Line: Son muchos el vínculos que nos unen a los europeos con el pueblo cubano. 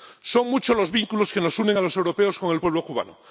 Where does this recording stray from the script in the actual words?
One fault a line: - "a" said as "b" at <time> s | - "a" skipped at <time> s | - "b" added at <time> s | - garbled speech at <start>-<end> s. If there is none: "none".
- "el" said as "los" at 0.8 s